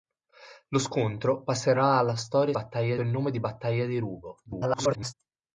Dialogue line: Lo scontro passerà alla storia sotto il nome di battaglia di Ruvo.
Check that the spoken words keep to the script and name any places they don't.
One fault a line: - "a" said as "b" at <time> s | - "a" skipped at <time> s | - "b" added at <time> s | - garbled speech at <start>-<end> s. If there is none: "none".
- "sotto" said as "battaglia" at 2.5 s
- garbled speech at 4.5-5.1 s